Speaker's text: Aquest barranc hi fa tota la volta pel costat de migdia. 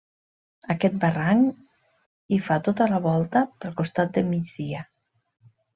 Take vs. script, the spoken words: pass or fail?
pass